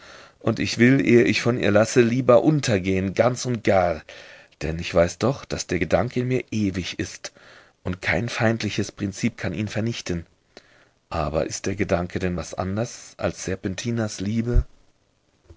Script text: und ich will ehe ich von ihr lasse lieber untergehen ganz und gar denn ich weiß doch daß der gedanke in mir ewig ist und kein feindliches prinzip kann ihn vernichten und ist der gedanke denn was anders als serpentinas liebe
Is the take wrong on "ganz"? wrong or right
right